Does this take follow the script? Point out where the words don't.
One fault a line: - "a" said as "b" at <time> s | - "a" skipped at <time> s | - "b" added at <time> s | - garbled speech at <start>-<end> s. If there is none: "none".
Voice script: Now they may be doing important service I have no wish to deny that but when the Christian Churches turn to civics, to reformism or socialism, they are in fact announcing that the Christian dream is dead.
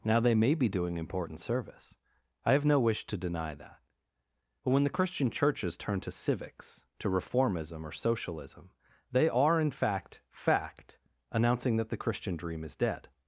- "fact" added at 10.3 s